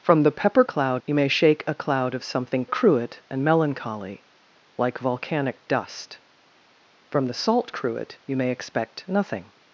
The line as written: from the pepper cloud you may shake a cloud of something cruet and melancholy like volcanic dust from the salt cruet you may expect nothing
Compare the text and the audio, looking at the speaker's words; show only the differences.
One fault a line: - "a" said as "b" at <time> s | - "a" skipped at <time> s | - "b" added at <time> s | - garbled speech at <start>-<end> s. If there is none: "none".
none